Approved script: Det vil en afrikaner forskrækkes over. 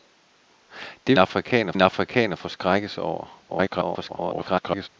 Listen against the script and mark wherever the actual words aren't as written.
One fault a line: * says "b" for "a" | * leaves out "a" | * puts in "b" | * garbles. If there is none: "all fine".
* says "afrikaner" for "vil"
* garbles